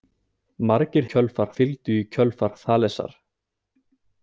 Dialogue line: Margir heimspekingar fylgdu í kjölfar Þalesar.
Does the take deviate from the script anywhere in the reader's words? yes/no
yes